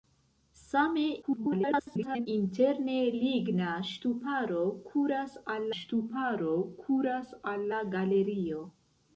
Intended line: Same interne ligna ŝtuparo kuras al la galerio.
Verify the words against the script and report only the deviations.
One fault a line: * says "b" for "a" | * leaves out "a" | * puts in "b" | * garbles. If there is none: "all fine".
* garbles
* puts in "ŝtuparo kuras al"